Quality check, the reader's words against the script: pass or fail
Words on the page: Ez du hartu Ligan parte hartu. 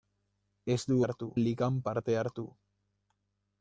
pass